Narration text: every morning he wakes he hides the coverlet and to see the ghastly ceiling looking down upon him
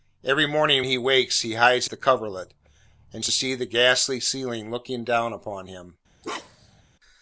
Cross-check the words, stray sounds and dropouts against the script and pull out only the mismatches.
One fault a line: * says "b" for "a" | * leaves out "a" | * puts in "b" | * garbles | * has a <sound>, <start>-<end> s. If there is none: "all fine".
* has a bark, 6.2-6.8 s